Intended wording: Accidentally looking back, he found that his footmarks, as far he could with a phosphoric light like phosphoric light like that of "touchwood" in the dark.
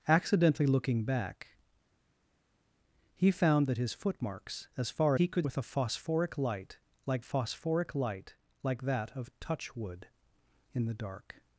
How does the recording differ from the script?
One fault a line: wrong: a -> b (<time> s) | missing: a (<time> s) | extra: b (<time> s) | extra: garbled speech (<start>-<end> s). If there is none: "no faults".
no faults